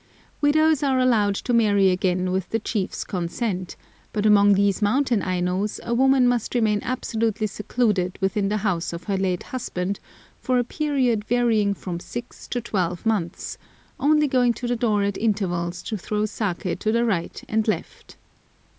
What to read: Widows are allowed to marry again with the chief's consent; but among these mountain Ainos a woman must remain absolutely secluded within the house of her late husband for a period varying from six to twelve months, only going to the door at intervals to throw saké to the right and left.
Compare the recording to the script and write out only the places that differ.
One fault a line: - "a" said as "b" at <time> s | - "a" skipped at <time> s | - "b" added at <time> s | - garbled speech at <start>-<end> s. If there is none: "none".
none